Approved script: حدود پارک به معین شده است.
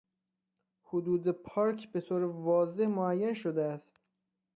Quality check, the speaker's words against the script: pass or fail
fail